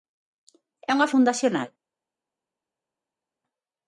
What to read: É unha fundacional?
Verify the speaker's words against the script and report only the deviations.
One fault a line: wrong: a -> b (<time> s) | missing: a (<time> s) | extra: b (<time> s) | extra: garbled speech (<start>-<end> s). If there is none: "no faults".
no faults